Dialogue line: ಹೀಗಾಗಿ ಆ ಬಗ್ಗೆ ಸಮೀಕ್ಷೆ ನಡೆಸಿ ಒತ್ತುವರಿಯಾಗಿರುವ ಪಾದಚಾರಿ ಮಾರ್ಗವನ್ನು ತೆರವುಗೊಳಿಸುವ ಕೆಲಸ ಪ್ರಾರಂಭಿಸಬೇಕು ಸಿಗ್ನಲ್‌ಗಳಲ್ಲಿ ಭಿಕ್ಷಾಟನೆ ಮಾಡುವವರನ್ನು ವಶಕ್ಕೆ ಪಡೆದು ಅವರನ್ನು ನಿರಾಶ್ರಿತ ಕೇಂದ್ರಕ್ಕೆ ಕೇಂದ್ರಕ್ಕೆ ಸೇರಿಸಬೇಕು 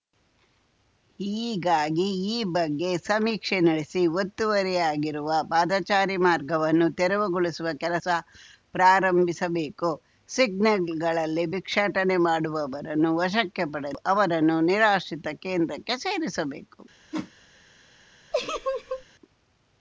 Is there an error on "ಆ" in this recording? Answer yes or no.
yes